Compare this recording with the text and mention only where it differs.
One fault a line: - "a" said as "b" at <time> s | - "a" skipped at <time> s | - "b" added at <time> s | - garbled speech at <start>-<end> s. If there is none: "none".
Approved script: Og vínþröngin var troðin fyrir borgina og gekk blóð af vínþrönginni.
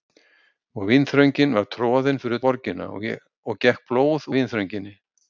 none